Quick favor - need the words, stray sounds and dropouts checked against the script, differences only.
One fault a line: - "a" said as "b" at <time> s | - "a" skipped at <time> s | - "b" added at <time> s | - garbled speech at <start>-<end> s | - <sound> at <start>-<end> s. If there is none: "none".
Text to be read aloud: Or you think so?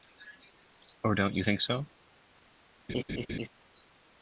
- "don't" added at 1.1 s
- laugh at 2.9-3.5 s